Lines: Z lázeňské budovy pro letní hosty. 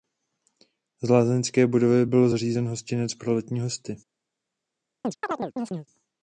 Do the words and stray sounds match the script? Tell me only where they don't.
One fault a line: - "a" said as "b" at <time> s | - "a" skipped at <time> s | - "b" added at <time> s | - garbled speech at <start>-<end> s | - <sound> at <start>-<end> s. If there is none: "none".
- "byl zřízen hostinec" added at 2.0 s
- chirp at 5.0-5.9 s